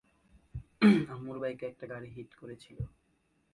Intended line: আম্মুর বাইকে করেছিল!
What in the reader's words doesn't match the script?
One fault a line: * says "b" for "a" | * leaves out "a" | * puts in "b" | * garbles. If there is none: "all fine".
* puts in "একটা গাড়ি হিট"